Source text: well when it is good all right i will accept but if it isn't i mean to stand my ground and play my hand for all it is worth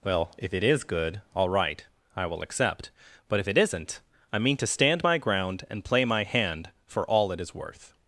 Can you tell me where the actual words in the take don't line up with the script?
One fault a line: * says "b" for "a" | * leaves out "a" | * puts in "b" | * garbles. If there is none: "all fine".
* says "if" for "when"